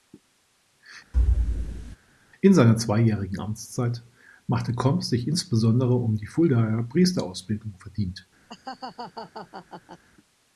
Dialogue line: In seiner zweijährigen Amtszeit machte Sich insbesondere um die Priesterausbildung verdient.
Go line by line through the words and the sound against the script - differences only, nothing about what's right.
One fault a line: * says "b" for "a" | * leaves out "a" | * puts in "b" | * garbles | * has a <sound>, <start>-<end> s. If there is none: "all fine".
* has a thud, 1.1-2.0 s
* puts in "Komp"
* puts in "Fuldaer"
* has a laugh, 8.5-10.0 s